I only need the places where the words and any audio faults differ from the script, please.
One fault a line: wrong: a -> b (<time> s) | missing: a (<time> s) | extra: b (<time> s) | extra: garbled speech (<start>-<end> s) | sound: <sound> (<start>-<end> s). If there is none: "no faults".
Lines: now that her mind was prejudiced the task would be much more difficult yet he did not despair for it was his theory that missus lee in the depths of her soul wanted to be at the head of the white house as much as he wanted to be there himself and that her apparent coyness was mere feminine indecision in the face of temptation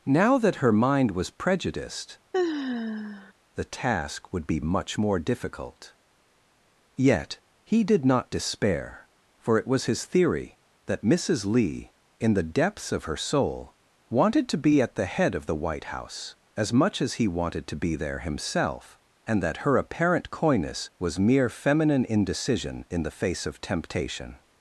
sound: sigh (2.3-3.3 s)